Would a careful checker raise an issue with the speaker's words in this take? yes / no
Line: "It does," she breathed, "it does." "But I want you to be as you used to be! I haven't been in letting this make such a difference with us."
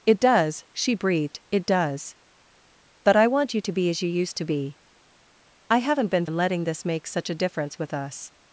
no